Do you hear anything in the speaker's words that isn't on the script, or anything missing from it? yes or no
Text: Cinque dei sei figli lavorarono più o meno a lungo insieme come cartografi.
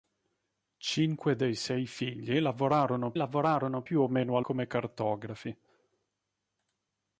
yes